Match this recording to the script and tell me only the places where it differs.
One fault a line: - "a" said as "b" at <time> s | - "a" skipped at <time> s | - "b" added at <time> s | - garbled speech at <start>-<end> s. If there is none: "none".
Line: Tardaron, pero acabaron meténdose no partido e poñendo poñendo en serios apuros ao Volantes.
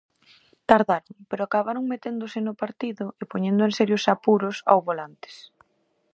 - "poñendo" skipped at 3.6 s